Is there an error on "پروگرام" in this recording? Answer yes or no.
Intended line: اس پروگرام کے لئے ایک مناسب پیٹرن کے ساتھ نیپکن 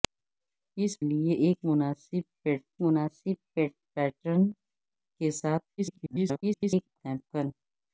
yes